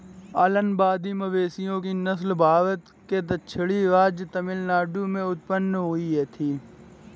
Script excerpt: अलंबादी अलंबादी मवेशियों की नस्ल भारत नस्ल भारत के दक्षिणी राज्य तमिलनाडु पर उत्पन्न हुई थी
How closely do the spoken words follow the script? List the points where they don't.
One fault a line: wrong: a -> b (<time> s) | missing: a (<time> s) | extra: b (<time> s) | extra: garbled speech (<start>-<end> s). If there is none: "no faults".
missing: अलंबादी (1.1 s)
missing: नस्ल भारत (2.9 s)
wrong: पर -> में (5.1 s)